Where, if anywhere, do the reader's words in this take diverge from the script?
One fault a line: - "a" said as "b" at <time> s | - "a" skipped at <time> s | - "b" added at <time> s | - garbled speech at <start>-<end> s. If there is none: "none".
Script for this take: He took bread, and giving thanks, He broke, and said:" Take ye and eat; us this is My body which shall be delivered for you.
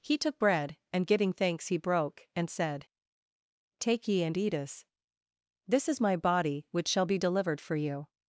none